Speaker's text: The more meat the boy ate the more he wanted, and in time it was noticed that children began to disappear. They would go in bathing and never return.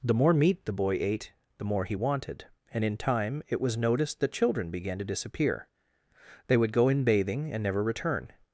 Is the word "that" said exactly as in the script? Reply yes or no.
yes